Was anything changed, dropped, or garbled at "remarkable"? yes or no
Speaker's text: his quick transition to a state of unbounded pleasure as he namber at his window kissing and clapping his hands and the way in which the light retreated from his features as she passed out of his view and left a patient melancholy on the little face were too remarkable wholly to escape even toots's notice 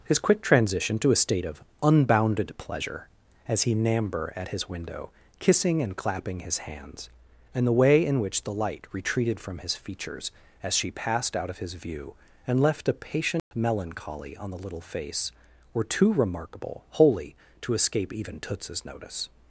no